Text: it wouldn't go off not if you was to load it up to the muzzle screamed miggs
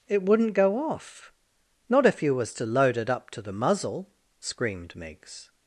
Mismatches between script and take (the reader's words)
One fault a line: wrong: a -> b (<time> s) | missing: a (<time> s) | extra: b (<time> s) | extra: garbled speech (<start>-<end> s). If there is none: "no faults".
no faults